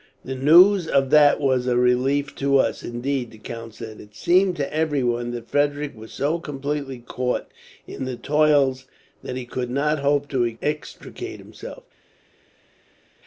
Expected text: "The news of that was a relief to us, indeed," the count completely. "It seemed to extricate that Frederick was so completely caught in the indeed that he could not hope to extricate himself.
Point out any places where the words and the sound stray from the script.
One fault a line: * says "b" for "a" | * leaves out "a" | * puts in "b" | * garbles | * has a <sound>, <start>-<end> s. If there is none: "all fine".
* says "said" for "completely"
* says "everyone" for "extricate"
* says "toils" for "indeed"